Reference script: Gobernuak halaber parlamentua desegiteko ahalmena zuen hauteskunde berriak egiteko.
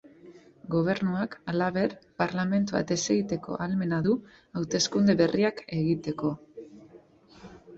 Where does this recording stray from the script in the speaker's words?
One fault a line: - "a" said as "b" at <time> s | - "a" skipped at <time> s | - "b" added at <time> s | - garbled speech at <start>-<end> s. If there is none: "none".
- "zuen" said as "du" at 4.1 s